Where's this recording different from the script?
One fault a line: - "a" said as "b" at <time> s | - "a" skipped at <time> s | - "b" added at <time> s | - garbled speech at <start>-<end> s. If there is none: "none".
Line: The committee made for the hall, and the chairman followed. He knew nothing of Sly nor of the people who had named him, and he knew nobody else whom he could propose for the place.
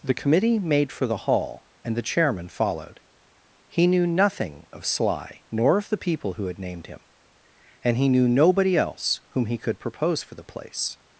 none